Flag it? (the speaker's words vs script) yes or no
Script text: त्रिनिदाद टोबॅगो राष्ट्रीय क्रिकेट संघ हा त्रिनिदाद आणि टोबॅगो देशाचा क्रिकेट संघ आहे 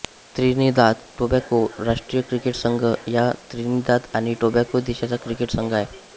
no